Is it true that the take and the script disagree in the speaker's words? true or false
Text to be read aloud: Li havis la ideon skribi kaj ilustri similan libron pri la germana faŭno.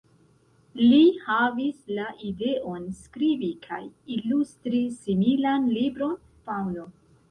true